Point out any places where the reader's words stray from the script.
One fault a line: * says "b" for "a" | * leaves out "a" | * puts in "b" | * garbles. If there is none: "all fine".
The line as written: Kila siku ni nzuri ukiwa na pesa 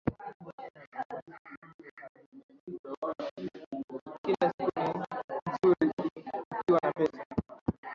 all fine